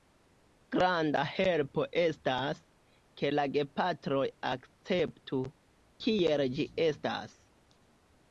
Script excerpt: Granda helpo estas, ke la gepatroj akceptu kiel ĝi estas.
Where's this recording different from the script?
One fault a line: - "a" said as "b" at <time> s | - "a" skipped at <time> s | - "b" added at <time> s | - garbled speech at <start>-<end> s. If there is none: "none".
none